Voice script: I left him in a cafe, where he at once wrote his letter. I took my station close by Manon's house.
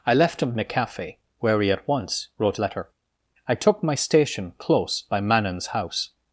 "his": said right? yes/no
no